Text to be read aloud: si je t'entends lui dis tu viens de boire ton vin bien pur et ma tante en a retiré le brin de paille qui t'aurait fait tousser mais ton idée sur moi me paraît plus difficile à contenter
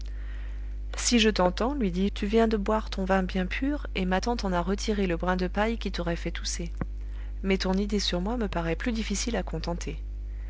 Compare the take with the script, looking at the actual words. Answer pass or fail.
pass